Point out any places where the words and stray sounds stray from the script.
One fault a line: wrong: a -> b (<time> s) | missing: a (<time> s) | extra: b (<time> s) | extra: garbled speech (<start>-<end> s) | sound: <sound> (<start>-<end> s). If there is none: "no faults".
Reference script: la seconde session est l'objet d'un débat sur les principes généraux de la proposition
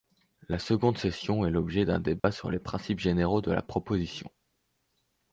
sound: dropout (2.2-2.2 s)